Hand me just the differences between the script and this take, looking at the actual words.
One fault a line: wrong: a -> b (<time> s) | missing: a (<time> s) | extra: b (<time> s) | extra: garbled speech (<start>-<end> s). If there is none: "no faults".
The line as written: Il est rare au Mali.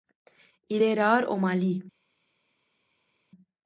no faults